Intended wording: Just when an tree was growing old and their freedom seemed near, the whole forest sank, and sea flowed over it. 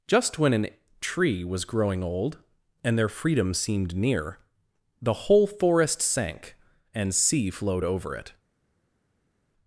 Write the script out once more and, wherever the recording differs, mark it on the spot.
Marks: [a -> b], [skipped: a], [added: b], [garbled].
Just when an tree was growing old and their freedom seemed near, the whole forest sank, and sea flowed over it.